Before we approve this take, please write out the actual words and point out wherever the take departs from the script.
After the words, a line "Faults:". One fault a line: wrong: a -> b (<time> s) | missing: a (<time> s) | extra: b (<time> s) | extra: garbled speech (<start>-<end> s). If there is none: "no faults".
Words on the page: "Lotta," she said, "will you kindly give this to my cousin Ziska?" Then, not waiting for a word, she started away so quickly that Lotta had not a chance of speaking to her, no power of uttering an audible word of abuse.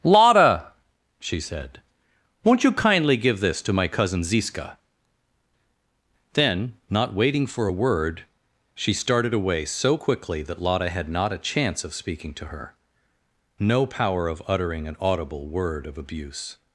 "Lotta," she said, "won't you kindly give this to my cousin Ziska?" Then, not waiting for a word, she started away so quickly that Lotta had not a chance of speaking to her, no power of uttering an audible word of abuse.
Faults:
wrong: will -> won't (2.4 s)